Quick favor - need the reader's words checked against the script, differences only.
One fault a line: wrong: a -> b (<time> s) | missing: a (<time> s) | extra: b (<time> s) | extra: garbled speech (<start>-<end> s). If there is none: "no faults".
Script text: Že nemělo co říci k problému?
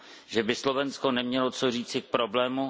extra: by Slovensko (0.4 s)